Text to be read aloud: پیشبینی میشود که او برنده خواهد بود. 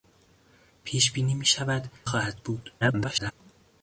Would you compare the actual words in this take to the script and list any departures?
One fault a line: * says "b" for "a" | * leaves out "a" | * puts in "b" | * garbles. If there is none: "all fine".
* leaves out "که او برنده"
* garbles